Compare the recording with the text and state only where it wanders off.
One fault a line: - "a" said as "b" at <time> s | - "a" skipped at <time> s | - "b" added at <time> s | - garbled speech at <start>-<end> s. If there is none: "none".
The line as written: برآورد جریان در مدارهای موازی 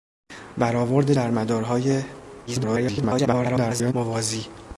- "جریان" skipped at 1.1 s
- garbled speech at 2.5-3.9 s